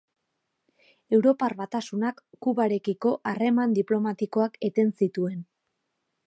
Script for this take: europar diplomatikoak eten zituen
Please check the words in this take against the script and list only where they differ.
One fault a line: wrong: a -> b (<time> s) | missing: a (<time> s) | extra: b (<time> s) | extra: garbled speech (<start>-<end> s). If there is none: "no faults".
extra: batasunak kubarekiko harreman (1.6 s)